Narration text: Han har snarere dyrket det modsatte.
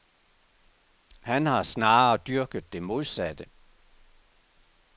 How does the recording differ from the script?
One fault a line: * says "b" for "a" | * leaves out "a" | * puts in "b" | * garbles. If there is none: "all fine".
all fine